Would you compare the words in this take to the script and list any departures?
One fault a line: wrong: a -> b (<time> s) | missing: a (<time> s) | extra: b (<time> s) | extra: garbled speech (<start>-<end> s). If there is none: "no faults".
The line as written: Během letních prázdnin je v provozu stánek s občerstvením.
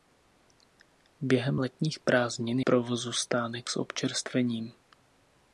missing: je v (2.6 s)